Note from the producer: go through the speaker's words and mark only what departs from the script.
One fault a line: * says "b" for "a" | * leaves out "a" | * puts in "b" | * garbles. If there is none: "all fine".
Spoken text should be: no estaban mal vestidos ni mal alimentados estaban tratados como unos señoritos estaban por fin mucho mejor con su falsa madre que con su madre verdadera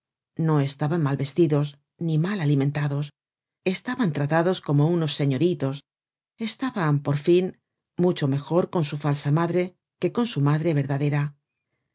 all fine